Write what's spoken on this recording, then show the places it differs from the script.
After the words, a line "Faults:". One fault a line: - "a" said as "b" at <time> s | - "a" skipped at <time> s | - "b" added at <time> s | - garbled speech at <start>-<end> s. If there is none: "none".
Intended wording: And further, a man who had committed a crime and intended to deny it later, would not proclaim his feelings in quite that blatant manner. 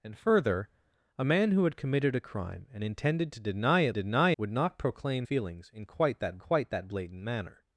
And further, a man who had committed a crime and intended to deny it deny, would not proclaim feelings in quite that quite that blatant manner.
Faults:
- "later" said as "deny" at 3.9 s
- "his" skipped at 5.3 s
- "quite that" added at 6.4 s